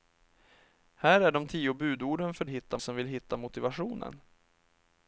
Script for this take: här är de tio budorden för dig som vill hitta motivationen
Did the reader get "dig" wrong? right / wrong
wrong